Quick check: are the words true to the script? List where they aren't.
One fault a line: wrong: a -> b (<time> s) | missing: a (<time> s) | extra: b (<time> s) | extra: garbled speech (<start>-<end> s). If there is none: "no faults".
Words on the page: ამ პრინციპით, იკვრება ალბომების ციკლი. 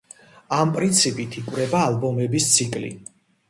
no faults